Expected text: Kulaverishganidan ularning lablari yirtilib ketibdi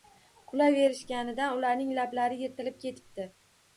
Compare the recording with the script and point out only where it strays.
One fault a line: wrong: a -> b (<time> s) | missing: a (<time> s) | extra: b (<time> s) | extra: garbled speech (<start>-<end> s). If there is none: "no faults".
no faults